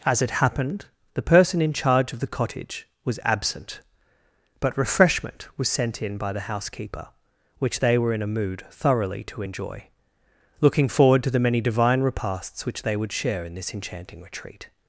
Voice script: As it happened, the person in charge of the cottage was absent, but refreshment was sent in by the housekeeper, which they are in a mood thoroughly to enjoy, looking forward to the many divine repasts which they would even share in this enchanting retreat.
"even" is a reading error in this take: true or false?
true